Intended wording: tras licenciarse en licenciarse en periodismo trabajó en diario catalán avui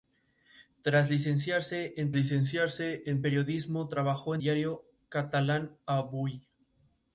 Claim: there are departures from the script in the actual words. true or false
false